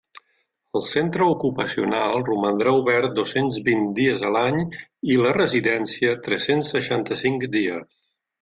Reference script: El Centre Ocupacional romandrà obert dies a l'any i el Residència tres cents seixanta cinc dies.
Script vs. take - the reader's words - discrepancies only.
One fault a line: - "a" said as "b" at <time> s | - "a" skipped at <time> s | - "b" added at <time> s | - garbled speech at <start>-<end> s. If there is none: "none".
- "dos cents vint" added at 3.2 s
- "el" said as "la" at 5.2 s